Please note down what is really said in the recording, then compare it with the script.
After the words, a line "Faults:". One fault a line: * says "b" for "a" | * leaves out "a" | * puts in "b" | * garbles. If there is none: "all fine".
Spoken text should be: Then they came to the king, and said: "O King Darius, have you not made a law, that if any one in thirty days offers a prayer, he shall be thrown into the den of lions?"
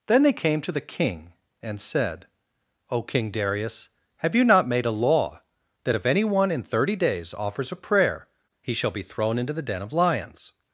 Then they came to the king, and said: "O King Darius, have you not made a law, that if any one in thirty days offers a prayer, he shall be thrown into the den of lions?"
Faults:
all fine